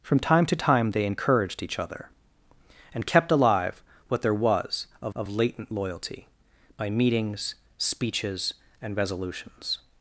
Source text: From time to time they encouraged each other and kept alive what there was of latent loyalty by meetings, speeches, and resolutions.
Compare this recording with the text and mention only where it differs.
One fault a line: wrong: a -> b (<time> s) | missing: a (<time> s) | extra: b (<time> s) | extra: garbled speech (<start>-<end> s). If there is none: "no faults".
extra: of (5.1 s)